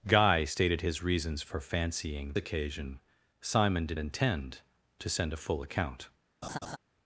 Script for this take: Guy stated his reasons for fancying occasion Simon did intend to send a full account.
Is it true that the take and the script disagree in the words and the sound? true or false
true